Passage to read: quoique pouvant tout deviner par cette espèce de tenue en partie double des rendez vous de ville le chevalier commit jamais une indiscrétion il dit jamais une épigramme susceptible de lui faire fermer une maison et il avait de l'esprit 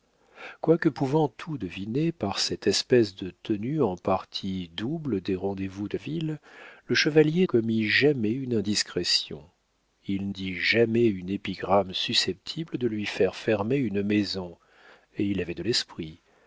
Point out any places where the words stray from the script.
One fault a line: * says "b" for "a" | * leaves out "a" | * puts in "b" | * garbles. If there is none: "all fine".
all fine